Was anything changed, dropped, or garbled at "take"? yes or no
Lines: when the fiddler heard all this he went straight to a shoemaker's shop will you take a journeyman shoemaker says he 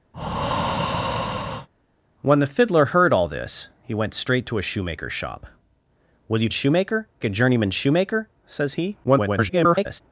yes